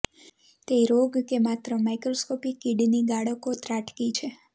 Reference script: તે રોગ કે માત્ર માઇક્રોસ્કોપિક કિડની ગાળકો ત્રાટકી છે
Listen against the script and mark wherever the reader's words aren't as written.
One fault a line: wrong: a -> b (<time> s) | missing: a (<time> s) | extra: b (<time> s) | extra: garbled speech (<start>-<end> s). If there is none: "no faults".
no faults